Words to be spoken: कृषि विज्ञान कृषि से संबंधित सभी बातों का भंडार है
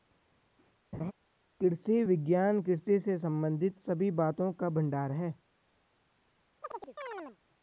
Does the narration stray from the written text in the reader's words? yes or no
no